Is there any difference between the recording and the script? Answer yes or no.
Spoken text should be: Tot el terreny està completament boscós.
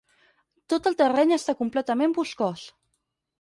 no